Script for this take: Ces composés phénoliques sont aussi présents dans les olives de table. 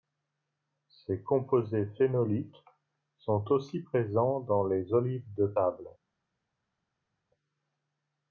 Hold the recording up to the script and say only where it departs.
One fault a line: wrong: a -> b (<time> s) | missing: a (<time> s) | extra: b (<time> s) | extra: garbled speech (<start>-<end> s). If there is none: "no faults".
no faults